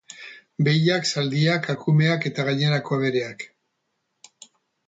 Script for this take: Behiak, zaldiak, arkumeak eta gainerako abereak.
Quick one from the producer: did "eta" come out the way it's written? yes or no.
yes